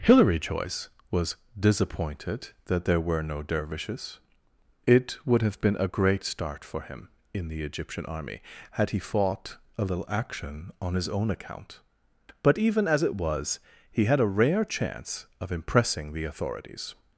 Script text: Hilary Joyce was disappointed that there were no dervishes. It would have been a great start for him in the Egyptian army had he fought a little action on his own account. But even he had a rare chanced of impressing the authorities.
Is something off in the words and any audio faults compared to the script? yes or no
yes